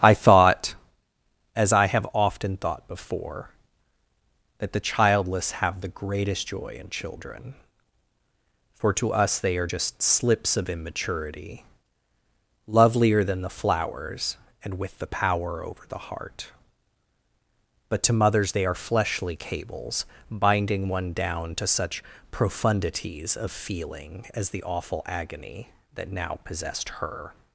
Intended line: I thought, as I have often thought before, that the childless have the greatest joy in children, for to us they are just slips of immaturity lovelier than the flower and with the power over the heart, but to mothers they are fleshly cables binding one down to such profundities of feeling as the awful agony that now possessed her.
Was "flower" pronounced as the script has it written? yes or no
no